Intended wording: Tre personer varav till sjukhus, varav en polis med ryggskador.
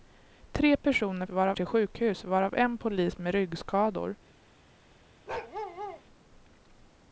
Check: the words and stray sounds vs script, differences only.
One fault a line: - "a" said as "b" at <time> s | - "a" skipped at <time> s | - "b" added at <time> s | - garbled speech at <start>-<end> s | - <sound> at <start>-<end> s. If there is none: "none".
- bark at 5.3-6.0 s